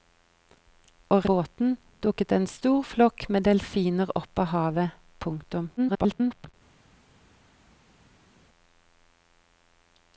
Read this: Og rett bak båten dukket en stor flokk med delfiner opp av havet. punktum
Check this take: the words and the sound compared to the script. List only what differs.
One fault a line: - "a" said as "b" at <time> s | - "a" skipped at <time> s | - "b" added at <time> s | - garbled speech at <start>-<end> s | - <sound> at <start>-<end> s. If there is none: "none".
- "rett bak" skipped at 1.2 s
- garbled speech at 5.8-6.5 s